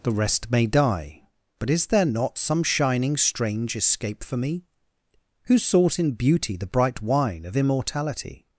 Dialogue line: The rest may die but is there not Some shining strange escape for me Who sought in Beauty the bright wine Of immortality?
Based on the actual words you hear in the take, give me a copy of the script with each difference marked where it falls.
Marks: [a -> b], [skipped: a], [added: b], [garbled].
The rest may die but is there not Some shining strange escape for me Who sought in Beauty the bright wine Of immortality?